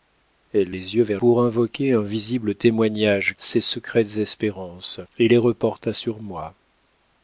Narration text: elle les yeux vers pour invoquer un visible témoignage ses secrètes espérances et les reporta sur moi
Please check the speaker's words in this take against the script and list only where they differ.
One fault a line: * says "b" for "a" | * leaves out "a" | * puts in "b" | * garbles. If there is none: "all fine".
all fine